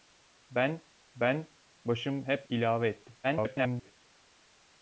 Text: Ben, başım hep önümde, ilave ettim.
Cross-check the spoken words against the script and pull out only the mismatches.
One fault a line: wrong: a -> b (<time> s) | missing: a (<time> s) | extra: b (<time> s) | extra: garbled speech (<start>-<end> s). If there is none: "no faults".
extra: ben (1.2 s)
missing: önümde (2.5 s)
extra: garbled speech (3.2-3.9 s)